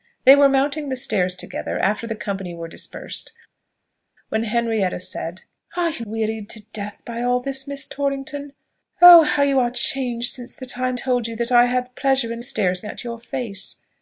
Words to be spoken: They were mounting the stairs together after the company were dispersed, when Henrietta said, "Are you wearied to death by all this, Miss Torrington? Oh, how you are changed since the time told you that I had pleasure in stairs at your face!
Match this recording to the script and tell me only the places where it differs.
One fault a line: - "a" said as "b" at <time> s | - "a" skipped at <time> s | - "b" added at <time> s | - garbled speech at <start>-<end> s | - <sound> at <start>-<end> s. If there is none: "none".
none